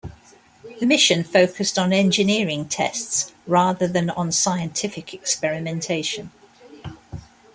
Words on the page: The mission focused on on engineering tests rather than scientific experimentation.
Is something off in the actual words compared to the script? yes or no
yes